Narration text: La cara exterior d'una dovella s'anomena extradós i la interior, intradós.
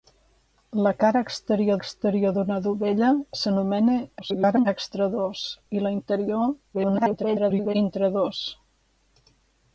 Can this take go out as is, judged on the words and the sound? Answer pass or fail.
fail